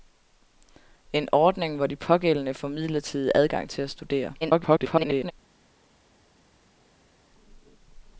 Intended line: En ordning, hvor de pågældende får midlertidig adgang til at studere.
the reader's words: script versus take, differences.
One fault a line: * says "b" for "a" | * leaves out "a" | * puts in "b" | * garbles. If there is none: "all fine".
* garbles